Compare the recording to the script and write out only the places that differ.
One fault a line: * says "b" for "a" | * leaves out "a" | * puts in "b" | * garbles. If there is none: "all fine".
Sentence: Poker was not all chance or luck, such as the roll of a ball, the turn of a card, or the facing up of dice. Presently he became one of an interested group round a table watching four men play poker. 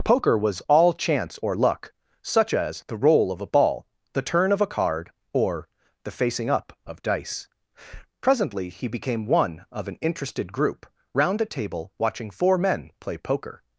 * leaves out "not"